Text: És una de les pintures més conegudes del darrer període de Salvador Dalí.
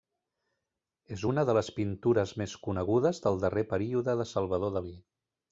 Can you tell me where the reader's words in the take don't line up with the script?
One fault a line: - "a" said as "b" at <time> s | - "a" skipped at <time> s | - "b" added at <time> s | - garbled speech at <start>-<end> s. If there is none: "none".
none